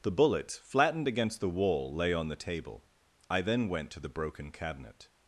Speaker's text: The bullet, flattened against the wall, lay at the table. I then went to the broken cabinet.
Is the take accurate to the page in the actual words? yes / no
no